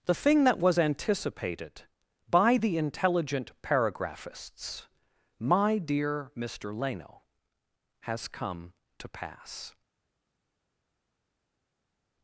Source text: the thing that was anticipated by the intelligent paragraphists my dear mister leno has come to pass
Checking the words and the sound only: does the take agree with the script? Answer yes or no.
yes